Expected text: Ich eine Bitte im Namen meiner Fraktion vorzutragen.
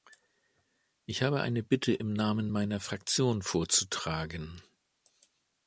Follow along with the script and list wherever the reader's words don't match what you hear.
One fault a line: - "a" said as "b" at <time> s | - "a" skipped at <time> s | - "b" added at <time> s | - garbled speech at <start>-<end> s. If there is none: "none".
- "habe" added at 1.2 s